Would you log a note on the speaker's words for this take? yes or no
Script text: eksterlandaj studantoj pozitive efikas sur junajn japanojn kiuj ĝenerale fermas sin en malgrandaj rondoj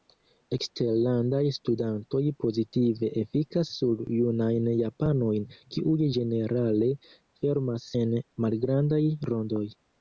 yes